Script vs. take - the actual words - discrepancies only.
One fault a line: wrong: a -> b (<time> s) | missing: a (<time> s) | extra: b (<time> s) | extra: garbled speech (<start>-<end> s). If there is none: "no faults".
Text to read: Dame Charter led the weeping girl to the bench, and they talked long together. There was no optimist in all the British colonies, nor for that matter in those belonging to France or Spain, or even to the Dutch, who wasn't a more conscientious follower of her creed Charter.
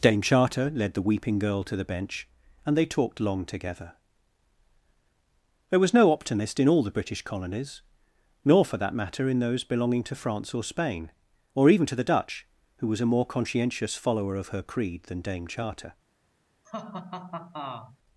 wrong: wasn't -> was (12.9 s)
extra: than Dame (15.0 s)